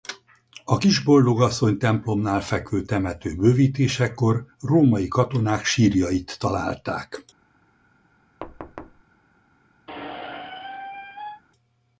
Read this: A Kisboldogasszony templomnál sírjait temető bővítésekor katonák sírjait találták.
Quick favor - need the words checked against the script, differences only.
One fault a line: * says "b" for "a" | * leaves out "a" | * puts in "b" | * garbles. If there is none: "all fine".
* says "fekvő" for "sírjait"
* puts in "római"